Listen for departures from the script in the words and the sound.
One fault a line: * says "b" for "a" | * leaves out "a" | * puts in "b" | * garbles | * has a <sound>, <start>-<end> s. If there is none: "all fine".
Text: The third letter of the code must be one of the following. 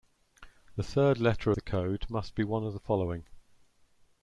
* leaves out "of"